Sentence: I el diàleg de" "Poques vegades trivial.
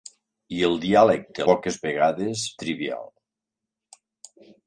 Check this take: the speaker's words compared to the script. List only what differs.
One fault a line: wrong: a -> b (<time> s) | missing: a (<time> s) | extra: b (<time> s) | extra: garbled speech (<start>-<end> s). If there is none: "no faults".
no faults